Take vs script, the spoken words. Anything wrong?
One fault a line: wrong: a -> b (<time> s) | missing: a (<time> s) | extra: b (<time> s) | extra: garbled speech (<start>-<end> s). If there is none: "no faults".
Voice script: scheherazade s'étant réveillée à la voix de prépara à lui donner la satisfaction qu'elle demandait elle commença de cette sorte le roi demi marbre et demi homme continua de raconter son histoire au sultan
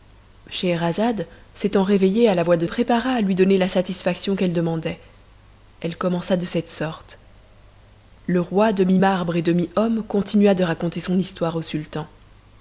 no faults